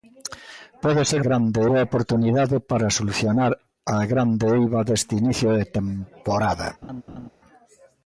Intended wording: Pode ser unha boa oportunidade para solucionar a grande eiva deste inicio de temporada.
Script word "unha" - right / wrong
wrong